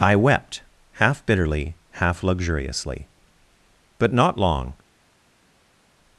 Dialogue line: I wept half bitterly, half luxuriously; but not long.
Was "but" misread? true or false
false